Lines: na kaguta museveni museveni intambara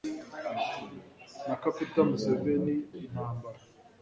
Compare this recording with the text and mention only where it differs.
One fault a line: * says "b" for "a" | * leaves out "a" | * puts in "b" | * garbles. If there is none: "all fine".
* leaves out "museveni"